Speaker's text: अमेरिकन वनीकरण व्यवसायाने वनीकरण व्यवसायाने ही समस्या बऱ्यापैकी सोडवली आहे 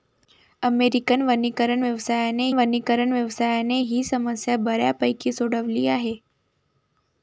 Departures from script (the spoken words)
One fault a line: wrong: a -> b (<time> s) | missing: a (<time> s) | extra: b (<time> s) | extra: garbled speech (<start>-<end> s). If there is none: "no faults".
no faults